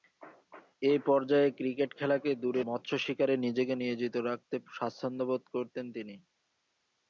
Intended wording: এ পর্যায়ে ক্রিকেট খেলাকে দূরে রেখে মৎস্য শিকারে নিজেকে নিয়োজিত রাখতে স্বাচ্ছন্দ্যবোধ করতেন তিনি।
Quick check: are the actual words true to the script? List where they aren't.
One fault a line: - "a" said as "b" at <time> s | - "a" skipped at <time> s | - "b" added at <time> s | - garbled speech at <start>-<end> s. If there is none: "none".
- "রেখে" skipped at 2.6 s